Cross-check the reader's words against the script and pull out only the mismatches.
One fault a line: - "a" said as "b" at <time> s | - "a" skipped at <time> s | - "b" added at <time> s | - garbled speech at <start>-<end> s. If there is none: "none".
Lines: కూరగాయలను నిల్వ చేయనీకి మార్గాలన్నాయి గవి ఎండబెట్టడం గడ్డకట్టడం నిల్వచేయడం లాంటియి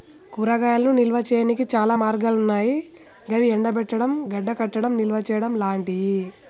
- "చాలా" added at 1.7 s